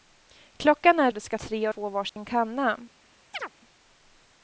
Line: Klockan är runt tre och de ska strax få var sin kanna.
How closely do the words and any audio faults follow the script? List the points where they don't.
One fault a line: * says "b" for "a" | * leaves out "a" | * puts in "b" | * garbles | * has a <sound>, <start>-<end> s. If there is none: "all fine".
* leaves out "runt tre"
* says "tre" for "strax"
* has a dropout, 2.1-2.2 s
* has a chirp, 3.3-3.5 s